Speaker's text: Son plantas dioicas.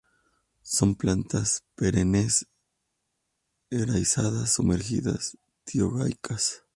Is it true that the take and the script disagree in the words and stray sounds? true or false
true